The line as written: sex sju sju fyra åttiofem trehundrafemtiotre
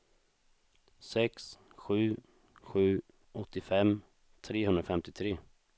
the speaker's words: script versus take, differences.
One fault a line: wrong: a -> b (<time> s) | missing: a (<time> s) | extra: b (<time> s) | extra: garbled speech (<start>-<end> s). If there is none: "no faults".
missing: fyra (3.0 s)